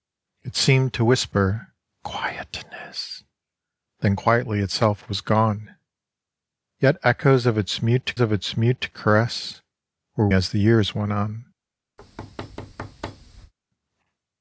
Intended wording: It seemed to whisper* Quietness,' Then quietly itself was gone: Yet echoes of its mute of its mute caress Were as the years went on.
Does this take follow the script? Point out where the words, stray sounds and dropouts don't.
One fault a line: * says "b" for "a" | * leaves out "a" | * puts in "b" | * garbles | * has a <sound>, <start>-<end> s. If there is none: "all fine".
* has a thud, 12.0-13.5 s